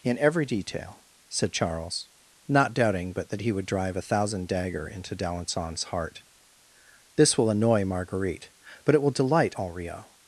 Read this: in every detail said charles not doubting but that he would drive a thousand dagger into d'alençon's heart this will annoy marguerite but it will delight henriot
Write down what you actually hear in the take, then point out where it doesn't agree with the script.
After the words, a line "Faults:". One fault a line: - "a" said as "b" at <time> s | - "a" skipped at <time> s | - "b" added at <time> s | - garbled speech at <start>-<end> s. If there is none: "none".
in every detail said charles not doubting but that he would drive a thousand dagger into d'alençon's heart this will annoy marguerite but it will delight henriot
Faults:
none